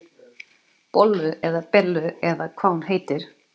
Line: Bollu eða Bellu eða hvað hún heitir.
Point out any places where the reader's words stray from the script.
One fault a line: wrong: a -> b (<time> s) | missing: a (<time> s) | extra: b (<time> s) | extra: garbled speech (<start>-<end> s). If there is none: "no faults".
no faults